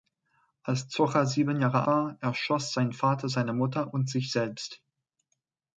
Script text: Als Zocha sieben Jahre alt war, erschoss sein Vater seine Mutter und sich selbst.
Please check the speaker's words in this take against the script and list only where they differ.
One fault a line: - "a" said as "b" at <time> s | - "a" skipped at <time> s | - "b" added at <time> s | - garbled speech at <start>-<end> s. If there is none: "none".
- "alt" skipped at 1.8 s